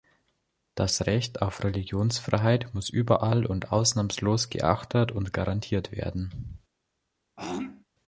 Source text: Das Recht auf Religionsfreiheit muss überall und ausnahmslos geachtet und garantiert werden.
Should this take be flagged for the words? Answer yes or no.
no